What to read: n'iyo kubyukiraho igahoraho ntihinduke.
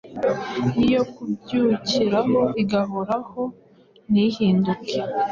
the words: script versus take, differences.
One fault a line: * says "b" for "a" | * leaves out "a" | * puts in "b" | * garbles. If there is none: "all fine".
all fine